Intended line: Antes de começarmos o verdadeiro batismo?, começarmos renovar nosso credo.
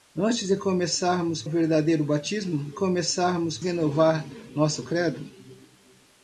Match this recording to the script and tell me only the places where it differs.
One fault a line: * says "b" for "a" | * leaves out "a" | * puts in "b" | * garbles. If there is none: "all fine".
all fine